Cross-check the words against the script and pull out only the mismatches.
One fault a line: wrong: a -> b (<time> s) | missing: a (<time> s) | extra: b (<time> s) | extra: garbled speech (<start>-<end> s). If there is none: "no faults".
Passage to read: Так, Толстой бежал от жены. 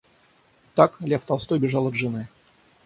extra: Лев (1.0 s)